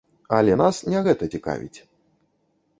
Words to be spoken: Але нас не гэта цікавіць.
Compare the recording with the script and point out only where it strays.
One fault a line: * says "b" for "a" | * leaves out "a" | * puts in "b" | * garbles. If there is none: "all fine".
all fine